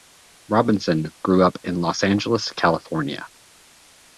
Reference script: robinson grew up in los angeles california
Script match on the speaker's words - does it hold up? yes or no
yes